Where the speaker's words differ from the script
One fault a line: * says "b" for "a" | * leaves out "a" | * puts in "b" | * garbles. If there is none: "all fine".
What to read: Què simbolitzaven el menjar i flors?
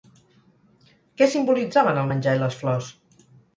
* puts in "les"